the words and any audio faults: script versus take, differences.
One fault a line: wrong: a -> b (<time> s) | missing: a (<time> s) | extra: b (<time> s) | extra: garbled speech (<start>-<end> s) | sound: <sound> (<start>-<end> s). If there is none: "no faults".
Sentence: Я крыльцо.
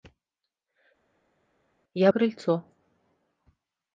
no faults